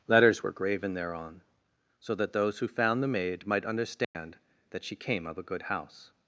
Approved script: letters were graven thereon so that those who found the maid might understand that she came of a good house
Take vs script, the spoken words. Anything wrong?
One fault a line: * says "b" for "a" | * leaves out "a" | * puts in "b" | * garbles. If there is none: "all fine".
all fine